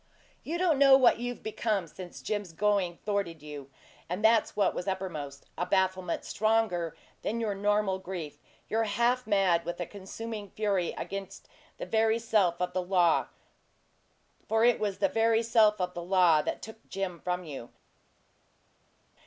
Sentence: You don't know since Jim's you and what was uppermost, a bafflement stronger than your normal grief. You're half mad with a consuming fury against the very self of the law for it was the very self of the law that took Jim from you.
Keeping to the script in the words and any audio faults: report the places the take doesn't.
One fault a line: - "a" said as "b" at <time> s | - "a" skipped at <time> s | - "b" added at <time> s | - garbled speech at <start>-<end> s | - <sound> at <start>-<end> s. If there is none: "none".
- "what you've become" added at 1.0 s
- "going thwarted" added at 2.5 s
- "that's" added at 4.2 s